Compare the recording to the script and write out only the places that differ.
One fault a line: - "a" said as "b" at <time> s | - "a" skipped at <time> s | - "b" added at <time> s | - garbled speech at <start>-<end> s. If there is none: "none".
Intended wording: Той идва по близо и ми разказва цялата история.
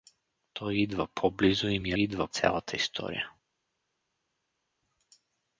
- "разказва" said as "идва" at 2.0 s